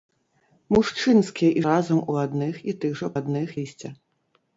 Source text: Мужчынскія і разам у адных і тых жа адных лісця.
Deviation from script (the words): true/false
false